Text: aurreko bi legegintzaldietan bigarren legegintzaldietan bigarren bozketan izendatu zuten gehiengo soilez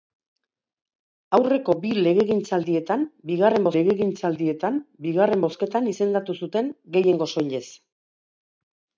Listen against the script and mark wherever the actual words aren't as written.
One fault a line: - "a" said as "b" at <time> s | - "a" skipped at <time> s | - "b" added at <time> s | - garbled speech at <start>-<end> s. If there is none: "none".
none